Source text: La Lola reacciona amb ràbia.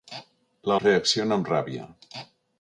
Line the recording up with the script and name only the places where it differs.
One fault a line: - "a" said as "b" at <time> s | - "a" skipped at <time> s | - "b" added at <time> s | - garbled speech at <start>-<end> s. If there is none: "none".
- "Lola" skipped at 0.8 s